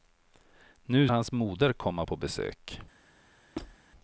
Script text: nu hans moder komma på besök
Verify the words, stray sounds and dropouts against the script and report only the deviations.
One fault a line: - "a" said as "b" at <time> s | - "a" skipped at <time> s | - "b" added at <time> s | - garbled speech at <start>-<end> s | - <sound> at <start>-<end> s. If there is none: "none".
- squeak at 3.6-3.8 s